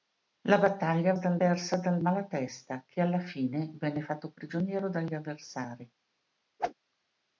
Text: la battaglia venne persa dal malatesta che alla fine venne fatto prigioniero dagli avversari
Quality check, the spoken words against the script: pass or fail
fail